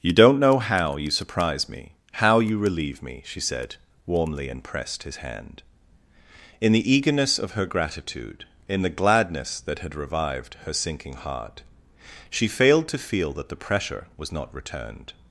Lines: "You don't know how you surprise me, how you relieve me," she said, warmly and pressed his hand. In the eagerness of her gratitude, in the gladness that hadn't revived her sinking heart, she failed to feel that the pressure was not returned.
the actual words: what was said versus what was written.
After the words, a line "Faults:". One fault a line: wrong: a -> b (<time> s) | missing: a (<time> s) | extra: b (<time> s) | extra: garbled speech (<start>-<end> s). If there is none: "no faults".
"You don't know how you surprise me, how you relieve me," she said, warmly and pressed his hand. In the eagerness of her gratitude, in the gladness that had revived her sinking heart, she failed to feel that the pressure was not returned.
Faults:
wrong: hadn't -> had (9.8 s)